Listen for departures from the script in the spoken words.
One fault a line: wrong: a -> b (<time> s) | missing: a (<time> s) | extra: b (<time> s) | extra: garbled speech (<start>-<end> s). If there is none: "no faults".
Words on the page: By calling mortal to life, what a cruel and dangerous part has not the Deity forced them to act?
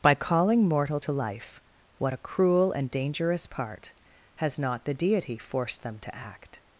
no faults